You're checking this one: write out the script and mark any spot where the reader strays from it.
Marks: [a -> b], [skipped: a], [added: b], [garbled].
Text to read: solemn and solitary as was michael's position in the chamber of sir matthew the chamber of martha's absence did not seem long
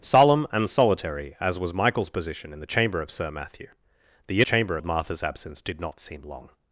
solemn and solitary as was michael's position in the chamber of sir matthew the chamber of martha's absence did not seem long